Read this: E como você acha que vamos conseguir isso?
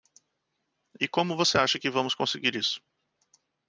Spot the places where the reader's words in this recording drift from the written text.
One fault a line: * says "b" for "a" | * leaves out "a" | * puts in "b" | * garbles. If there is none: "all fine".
all fine